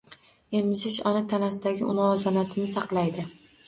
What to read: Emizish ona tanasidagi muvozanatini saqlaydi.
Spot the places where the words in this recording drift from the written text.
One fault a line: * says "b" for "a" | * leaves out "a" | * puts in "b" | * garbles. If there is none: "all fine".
all fine